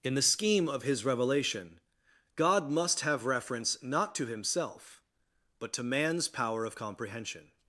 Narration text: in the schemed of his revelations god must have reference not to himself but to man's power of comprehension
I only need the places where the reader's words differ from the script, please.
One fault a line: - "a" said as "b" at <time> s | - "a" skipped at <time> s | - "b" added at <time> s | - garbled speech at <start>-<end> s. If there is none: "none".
- "schemed" said as "scheme" at 0.2 s
- "revelations" said as "revelation" at 1.1 s